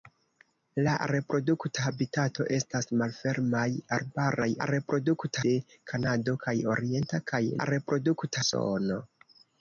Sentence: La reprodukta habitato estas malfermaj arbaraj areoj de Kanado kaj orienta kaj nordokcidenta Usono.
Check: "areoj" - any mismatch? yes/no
yes